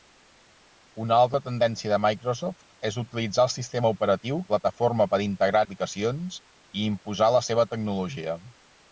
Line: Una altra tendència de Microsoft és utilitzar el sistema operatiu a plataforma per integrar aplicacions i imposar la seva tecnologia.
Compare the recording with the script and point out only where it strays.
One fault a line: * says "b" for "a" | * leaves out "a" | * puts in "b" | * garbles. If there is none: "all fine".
all fine